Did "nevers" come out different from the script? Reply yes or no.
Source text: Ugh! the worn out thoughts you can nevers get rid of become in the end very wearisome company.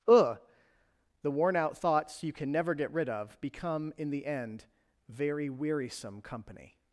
yes